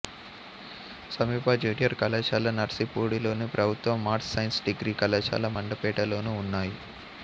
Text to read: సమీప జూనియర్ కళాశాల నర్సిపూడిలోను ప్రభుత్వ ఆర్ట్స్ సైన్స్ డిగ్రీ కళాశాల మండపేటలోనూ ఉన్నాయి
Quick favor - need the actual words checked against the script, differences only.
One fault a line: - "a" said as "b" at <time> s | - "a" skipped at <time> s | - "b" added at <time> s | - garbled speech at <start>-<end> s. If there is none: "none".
none